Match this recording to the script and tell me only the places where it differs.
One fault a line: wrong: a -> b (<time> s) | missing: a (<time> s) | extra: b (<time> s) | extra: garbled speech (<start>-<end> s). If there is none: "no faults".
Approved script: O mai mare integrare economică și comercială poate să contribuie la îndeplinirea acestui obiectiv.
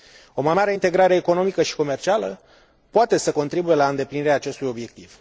no faults